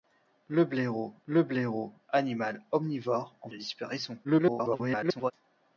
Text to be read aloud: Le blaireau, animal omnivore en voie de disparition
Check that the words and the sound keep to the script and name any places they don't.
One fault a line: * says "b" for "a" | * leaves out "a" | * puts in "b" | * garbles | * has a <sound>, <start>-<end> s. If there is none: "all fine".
* puts in "le blaireau"
* leaves out "voie"
* garbles